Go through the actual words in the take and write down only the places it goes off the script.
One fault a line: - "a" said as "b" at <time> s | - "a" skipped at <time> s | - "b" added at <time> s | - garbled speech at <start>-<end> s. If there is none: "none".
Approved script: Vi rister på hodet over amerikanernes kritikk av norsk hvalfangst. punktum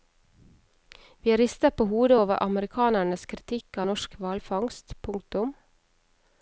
none